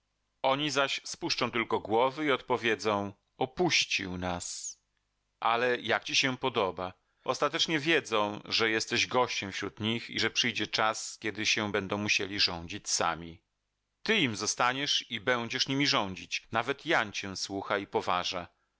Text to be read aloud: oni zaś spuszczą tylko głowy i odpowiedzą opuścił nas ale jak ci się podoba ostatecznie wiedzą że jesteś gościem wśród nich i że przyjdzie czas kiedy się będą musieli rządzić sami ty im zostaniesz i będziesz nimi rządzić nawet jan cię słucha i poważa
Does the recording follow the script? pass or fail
pass